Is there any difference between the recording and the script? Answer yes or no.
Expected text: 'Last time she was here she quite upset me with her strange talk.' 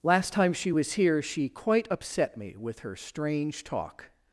no